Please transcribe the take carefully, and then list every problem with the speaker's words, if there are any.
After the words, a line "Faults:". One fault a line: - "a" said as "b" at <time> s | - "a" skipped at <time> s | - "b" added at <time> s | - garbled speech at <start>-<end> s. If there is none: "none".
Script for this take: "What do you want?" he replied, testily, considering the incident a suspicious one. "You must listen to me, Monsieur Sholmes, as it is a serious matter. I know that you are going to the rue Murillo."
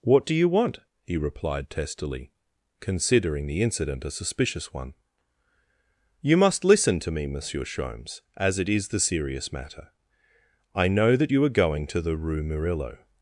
"What do you want?" he replied, testily, considering the incident a suspicious one. "You must listen to me, Monsieur Sholmes, as it is the serious matter. I know that you are going to the rue Murillo."
Faults:
- "a" said as "the" at 8.9 s